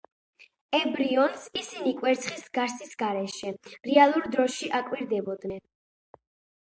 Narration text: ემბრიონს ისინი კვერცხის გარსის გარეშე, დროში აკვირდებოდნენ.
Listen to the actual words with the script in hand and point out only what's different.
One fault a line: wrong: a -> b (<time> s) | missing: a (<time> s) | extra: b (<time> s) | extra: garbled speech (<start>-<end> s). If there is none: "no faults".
extra: რეალურ (3.9 s)